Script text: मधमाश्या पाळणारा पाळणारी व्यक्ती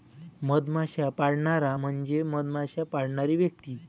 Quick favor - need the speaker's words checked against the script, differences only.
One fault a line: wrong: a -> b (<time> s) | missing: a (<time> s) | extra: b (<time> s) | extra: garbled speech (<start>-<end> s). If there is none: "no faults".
extra: म्हणजे मधमाश्या (1.7 s)